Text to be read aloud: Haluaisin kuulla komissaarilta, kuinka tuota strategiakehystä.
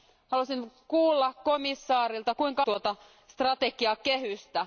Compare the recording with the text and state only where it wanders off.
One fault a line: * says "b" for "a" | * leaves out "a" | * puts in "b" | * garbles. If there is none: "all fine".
all fine